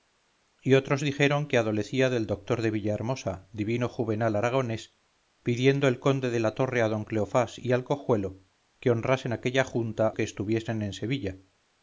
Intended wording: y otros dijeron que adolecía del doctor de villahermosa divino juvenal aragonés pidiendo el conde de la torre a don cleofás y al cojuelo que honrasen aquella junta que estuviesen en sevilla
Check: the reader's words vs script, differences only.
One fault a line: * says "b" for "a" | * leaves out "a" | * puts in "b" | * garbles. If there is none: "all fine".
all fine